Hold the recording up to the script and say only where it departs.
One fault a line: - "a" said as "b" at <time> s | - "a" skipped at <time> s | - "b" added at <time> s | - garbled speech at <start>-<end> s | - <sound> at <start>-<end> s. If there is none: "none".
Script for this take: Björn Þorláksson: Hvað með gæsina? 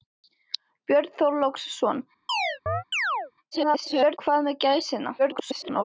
- chirp at 2.3-3.3 s
- garbled speech at 3.5-4.2 s
- garbled speech at 5.2-5.8 s